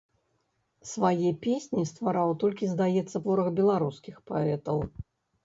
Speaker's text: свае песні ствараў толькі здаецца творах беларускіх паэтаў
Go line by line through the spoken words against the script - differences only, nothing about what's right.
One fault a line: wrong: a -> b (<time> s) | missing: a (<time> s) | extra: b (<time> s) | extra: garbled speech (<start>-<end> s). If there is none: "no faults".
no faults